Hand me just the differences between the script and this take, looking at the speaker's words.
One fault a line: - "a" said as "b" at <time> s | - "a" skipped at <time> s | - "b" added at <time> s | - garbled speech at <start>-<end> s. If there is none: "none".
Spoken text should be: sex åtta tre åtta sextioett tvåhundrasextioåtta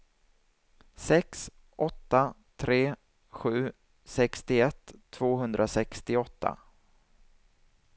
- "åtta" said as "sju" at 3.3 s